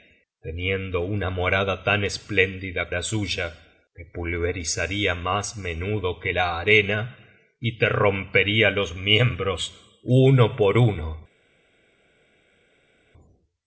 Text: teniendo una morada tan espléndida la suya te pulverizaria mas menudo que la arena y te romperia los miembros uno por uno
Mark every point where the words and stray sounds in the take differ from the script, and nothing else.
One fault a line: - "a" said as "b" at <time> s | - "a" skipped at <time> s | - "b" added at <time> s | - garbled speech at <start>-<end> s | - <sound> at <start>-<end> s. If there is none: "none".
none